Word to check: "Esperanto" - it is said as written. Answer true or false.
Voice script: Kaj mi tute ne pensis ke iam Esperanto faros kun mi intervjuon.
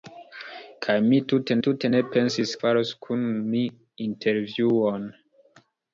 false